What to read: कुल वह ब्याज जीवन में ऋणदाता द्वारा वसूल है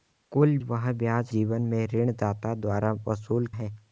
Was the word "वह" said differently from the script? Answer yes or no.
no